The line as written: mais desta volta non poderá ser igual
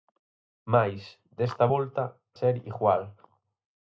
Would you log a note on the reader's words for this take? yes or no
yes